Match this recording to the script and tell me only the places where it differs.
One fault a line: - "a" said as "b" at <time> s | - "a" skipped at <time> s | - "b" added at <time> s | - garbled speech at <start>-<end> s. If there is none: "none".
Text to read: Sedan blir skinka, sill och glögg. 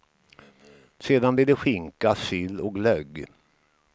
- "det" added at 1.4 s